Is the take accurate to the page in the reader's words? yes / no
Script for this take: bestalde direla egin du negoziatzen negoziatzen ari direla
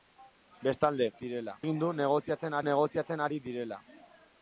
yes